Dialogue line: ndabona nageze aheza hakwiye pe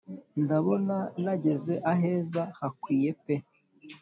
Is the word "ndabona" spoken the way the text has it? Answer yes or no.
yes